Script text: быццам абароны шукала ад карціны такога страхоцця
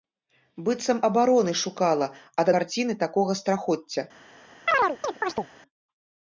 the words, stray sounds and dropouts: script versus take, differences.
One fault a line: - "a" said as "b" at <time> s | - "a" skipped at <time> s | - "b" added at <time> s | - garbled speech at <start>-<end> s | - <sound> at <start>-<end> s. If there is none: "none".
- chirp at 4.7-5.5 s